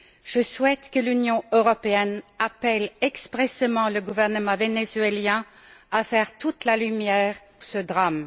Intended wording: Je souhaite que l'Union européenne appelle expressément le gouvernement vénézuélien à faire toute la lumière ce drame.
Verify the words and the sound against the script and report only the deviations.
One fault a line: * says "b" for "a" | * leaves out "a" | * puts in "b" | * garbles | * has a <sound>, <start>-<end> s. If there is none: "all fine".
all fine